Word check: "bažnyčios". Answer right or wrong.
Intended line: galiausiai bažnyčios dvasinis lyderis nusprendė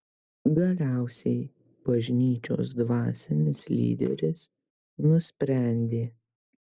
right